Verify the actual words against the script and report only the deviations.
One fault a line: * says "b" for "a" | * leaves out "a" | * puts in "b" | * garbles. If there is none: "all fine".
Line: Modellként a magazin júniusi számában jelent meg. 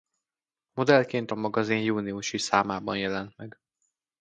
all fine